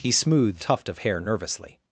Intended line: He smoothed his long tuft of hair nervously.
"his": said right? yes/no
no